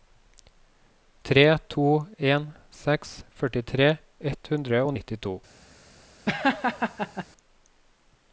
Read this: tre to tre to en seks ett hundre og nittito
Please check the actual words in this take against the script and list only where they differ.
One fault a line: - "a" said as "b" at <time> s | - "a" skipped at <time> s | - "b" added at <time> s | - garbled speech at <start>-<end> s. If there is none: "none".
- "tre to" skipped at 1.9 s
- "førtitre" added at 3.4 s